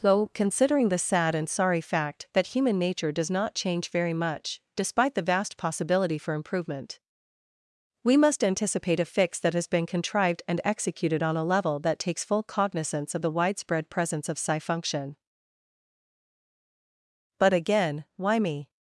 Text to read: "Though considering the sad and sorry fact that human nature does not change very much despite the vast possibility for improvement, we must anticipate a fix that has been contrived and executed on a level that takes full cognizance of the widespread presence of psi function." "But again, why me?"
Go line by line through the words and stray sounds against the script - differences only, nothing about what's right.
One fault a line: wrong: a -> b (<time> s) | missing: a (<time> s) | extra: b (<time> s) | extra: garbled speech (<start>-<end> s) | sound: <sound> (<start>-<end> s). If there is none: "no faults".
no faults